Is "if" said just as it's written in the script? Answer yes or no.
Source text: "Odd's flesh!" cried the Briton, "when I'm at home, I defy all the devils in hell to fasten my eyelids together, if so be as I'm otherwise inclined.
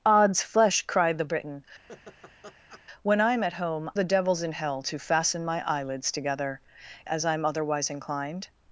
no